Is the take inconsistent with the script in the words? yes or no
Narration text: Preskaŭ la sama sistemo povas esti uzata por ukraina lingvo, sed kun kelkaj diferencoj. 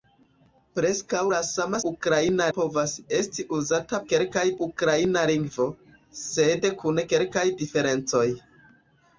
yes